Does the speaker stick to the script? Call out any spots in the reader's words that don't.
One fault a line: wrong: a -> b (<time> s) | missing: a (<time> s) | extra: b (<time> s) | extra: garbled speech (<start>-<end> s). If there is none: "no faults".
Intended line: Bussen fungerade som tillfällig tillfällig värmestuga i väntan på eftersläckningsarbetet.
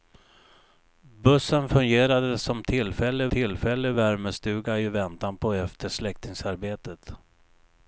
no faults